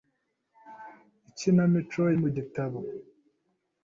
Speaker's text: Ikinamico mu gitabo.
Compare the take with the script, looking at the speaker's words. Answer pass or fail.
pass